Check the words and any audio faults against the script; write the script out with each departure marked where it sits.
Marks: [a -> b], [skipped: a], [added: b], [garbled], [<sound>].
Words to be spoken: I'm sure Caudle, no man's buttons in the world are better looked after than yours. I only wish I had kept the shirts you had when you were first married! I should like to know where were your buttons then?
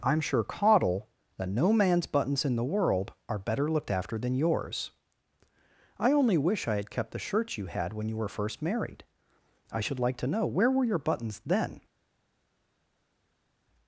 I'm sure Caudle, [added: that] no man's buttons in the world are better looked after than yours. I only wish I had kept the shirts you had when you were first married! I should like to know where were your buttons then?